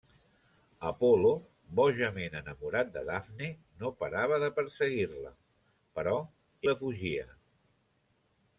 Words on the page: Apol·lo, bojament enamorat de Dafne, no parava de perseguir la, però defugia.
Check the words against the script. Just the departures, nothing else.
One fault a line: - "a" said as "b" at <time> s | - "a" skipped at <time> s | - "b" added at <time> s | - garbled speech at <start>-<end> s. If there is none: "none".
none